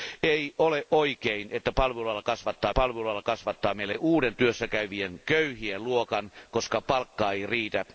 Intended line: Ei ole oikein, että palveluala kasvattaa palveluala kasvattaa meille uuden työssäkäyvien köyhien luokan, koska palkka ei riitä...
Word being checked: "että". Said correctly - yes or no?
yes